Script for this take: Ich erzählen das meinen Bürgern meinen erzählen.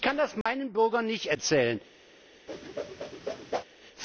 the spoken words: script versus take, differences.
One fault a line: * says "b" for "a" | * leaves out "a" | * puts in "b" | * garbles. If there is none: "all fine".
* says "kann" for "erzählen"
* says "nicht" for "meinen"